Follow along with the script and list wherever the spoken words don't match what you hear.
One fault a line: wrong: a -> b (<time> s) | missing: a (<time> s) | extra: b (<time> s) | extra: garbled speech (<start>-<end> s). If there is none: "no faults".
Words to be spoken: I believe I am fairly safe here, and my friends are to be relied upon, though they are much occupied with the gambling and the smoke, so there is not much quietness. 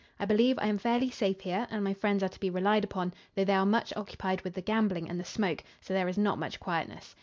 no faults